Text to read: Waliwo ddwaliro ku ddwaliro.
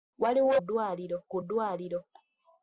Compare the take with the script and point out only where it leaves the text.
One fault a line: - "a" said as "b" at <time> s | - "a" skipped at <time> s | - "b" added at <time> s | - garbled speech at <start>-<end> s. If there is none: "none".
none